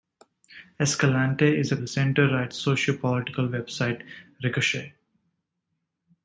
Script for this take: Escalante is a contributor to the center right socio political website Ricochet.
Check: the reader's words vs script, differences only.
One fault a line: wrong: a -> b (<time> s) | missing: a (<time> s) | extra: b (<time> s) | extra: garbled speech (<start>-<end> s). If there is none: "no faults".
missing: contributor to (1.8 s)